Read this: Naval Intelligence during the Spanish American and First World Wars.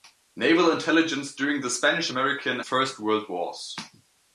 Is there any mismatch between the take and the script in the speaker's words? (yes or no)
yes